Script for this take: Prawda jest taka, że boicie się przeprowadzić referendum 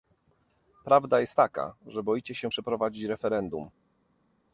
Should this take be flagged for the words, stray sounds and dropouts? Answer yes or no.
no